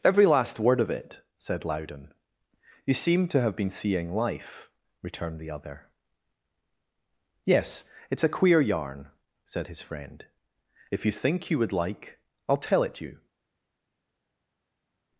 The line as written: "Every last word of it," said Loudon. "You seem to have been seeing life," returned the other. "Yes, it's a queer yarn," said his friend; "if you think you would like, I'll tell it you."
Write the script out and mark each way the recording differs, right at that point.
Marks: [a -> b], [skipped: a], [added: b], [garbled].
"Every last word of it," said Loudon. "You seem to have been seeing life," returned the other. "Yes, it's a queer yarn," said his friend; "if you think you would like, I'll tell it you."